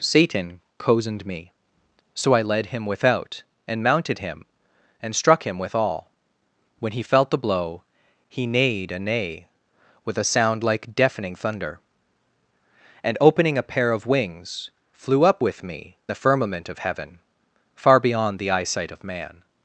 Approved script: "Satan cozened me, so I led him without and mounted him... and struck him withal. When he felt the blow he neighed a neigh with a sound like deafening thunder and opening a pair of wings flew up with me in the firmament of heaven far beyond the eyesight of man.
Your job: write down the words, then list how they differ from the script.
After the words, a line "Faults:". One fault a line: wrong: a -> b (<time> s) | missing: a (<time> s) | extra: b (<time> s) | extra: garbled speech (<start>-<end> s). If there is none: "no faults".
"Satan cozened me, so I led him without and mounted him... and struck him withal. When he felt the blow he neighed a neigh with a sound like deafening thunder and opening a pair of wings flew up with me the firmament of heaven far beyond the eyesight of man.
Faults:
missing: in (16.0 s)